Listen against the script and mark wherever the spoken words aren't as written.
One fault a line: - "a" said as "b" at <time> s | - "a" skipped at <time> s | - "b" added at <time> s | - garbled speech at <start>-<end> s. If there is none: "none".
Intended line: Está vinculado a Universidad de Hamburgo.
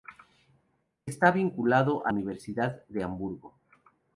none